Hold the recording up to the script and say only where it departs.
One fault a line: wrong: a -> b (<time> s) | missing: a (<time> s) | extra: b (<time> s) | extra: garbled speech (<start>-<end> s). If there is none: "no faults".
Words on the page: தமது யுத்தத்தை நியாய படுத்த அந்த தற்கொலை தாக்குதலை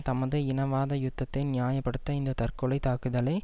extra: இனவாத (0.5 s)
wrong: அந்த -> இந்த (2.1 s)